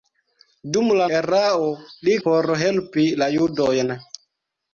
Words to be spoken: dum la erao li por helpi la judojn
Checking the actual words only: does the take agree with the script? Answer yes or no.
yes